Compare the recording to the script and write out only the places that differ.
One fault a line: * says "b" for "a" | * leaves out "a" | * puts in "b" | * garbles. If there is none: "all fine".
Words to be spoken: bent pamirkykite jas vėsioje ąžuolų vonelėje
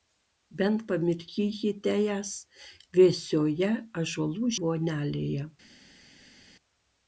all fine